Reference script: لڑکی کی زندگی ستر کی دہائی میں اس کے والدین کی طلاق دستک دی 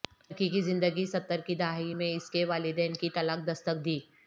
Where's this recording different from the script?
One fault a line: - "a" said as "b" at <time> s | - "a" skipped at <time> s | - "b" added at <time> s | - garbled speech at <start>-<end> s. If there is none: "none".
none